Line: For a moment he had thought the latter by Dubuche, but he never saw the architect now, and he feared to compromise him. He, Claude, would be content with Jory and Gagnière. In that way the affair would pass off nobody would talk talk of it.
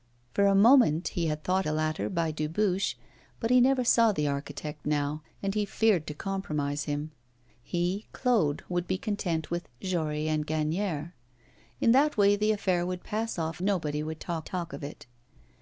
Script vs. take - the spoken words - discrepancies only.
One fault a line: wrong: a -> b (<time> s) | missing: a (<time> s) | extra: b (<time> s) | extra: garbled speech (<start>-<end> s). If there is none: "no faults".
no faults